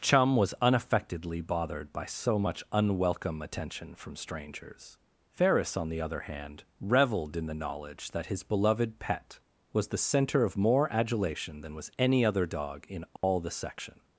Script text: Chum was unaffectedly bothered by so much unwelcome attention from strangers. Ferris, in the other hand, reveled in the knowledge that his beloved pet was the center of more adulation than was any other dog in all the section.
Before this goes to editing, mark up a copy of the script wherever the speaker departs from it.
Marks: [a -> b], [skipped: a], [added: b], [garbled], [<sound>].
Chum was unaffectedly bothered by so much unwelcome attention from strangers. Ferris, [in -> on] the other hand, reveled in the knowledge that his beloved pet was the center of more adulation than was any other dog in all [dropout] the section.